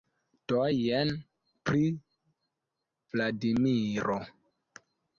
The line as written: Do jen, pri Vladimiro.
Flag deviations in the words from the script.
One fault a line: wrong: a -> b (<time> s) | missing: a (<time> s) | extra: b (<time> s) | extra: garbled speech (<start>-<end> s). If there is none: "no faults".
no faults